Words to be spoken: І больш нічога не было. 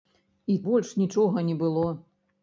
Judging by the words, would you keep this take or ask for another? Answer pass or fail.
pass